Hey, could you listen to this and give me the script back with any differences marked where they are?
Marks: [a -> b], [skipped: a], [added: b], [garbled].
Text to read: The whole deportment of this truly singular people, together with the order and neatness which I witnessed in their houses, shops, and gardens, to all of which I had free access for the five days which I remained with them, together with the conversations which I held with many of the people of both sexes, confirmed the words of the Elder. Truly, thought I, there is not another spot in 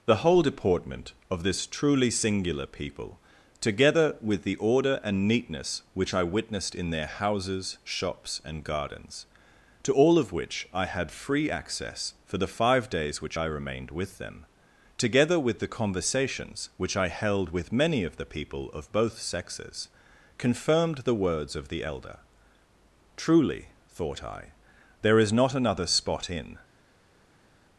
The whole deportment of this truly singular people, together with the order and neatness which I witnessed in their houses, shops, and gardens, to all of which I had free access for the five days which I remained with them, together with the conversations which I held with many of the people of both sexes, confirmed the words of the Elder. Truly, thought I, there is not another spot in